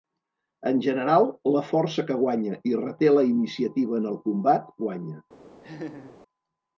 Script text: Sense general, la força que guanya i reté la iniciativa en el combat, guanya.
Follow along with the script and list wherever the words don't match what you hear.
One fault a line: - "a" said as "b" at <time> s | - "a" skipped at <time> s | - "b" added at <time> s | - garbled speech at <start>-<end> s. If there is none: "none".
- "Sense" said as "En" at 0.7 s